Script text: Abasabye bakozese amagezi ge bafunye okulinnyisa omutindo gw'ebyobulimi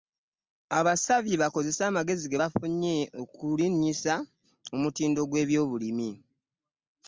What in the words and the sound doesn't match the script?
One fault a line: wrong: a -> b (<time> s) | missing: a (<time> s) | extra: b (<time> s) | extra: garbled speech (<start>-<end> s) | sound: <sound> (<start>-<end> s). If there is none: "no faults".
no faults